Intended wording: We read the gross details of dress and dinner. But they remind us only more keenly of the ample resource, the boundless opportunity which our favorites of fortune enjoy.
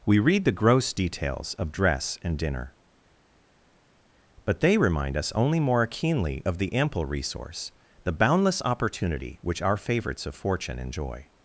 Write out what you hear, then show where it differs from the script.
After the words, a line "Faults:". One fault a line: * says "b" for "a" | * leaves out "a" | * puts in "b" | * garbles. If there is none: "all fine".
We read the gross details of dress and dinner. But they remind us only more keenly of the ample resource, the boundless opportunity which our favorites of fortune enjoy.
Faults:
all fine